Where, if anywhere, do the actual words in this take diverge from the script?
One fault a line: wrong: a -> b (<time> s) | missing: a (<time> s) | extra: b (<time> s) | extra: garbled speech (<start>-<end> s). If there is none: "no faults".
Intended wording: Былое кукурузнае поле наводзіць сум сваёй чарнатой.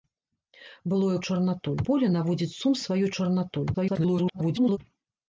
wrong: кукурузнае -> чарнатой (1.3 s)
extra: garbled speech (3.7-4.8 s)